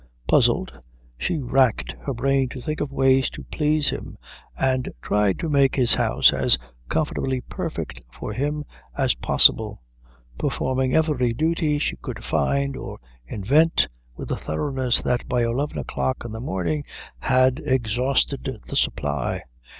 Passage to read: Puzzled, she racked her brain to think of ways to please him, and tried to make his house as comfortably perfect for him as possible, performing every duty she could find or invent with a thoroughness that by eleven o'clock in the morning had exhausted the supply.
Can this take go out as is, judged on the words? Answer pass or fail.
pass